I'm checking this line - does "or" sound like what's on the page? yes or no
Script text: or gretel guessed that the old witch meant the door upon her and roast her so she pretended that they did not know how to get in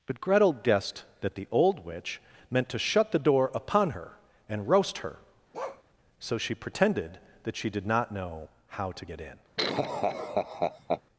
no